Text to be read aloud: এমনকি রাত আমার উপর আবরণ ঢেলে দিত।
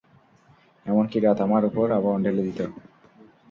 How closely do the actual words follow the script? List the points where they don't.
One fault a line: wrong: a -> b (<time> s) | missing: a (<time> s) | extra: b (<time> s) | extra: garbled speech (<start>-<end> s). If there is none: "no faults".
no faults